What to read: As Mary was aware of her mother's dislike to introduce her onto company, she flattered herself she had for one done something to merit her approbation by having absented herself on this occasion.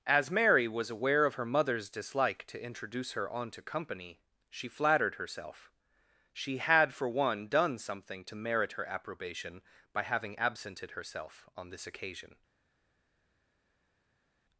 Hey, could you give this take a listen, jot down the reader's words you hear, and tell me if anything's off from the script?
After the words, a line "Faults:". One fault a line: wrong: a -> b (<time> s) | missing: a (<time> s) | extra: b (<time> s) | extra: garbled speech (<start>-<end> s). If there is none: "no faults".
As Mary was aware of her mother's dislike to introduce her onto company, she flattered herself she had for one done something to merit her approbation by having absented herself on this occasion.
Faults:
no faults